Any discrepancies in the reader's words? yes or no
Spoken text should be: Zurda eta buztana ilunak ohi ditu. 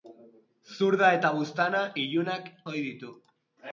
no